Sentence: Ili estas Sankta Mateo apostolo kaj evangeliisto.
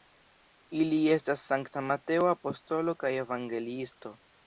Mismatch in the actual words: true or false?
false